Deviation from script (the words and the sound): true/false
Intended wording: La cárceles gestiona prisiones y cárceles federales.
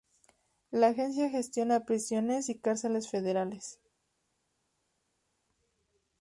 true